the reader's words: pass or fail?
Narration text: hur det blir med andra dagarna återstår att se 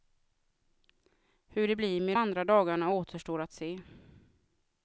pass